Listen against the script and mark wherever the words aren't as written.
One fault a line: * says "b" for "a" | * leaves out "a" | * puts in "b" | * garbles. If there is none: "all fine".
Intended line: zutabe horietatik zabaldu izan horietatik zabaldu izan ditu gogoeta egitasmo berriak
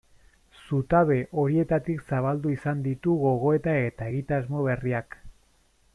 * leaves out "horietatik zabaldu izan"
* puts in "eta"